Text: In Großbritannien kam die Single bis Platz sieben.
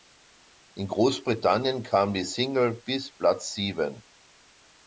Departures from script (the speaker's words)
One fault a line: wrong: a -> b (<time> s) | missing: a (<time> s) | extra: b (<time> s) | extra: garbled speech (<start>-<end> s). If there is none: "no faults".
no faults